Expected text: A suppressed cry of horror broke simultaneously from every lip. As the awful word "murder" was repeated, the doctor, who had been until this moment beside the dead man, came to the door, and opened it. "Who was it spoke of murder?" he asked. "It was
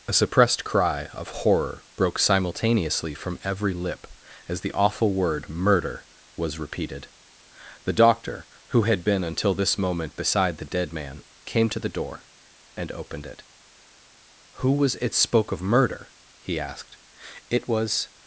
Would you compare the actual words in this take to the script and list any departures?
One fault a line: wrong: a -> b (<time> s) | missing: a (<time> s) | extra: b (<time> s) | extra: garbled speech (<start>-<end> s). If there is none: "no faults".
no faults